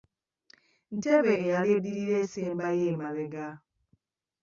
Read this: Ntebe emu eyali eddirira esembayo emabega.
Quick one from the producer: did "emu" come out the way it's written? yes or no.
no